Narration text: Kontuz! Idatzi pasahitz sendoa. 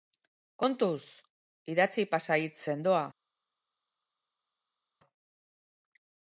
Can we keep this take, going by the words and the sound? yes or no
yes